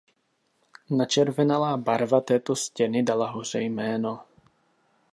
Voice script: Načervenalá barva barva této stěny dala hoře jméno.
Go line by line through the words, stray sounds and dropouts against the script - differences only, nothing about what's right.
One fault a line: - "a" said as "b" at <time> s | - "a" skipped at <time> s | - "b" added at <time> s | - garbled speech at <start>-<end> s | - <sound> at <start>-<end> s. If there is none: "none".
- "barva" skipped at 2.2 s